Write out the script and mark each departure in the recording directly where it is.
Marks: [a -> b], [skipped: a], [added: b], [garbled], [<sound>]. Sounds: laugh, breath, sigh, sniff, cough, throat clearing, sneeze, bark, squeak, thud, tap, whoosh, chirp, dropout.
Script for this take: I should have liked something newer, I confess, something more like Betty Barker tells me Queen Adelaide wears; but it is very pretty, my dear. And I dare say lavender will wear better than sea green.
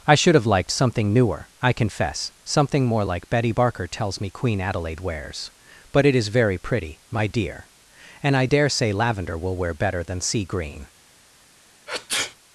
I should have liked something newer, I confess, something more like Betty Barker tells me Queen Adelaide wears; but it is very pretty, my dear. And I dare say lavender will wear better than sea green. [sneeze]